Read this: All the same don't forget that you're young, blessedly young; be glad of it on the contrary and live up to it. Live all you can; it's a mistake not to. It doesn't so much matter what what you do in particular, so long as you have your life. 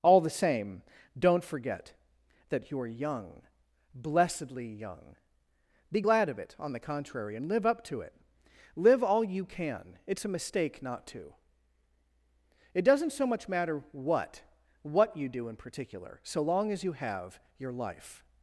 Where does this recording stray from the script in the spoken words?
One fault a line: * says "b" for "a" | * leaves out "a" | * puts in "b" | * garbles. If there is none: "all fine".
all fine